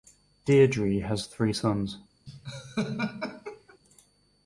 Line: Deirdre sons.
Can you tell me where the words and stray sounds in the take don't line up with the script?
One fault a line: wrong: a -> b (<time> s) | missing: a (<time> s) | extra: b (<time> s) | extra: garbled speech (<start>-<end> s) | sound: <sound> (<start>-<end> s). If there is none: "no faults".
extra: has three (1.0 s)
sound: laugh (2.3-3.8 s)